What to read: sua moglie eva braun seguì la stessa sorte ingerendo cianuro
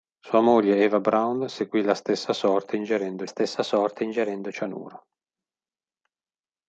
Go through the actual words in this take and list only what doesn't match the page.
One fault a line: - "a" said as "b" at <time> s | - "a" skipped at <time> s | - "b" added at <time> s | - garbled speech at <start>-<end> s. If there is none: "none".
- "stessa sorte ingerendo" added at 3.2 s